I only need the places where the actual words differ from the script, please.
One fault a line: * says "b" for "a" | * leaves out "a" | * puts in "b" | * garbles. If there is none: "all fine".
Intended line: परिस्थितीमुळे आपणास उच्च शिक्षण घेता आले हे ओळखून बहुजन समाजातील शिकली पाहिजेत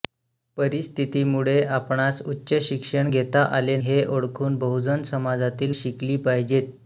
all fine